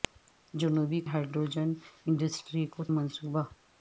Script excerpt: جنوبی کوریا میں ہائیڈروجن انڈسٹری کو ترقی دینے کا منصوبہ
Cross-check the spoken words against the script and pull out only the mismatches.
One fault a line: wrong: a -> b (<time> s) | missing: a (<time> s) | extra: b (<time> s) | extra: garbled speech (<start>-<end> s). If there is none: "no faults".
missing: کوریا میں (1.0 s)
missing: ترقی دینے کا (2.8 s)